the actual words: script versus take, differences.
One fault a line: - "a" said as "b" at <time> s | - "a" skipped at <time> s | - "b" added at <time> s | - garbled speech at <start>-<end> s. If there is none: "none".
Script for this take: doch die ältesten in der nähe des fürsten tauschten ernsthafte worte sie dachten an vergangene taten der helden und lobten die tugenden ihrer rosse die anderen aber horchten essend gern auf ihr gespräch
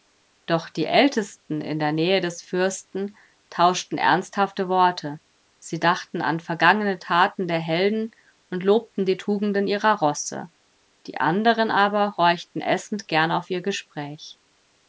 none